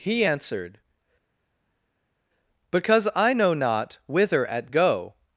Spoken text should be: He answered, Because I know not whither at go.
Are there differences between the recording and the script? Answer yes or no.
no